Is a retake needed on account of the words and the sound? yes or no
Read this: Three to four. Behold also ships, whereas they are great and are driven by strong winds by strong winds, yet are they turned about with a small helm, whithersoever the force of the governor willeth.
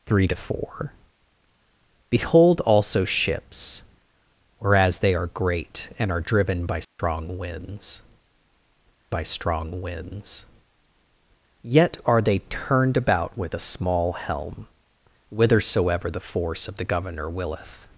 yes